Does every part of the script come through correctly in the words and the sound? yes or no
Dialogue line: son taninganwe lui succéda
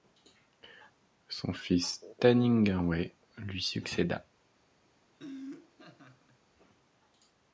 no